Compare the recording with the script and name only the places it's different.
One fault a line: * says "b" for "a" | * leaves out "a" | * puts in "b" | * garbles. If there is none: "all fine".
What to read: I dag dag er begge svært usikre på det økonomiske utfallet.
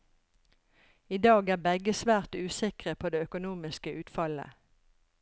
* leaves out "dag"